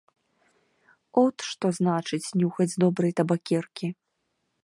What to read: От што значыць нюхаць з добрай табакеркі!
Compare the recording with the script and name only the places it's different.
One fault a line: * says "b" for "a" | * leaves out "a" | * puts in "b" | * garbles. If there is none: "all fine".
all fine